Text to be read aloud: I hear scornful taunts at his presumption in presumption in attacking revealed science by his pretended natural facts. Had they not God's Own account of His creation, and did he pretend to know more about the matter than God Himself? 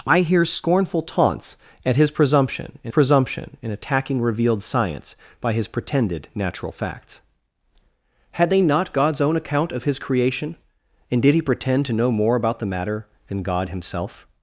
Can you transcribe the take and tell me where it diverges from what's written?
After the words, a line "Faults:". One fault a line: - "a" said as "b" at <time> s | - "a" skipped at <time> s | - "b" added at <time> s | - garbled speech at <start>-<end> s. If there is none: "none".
I hear scornful taunts at his presumption in presumption in attacking revealed science by his pretended natural facts. Had they not God's Own account of His creation, and did he pretend to know more about the matter than God Himself?
Faults:
none